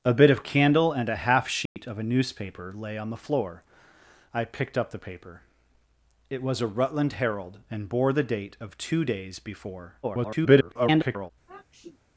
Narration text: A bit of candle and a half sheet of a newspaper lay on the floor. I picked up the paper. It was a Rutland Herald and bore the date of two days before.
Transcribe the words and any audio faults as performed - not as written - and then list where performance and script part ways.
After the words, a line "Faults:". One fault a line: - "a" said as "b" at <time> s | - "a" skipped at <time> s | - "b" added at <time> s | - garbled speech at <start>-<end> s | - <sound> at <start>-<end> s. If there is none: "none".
A bit of candle and a half sheet of a newspaper lay on the floor. I picked up the paper. It was a Rutland Herald and bore the date of two days before. [garbled]
Faults:
- dropout at 1.7-1.8 s
- garbled speech at 10.0-11.3 s
- sniff at 11.5-12.0 s